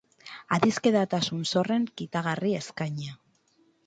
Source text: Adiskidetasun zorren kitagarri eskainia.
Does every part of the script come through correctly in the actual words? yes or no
yes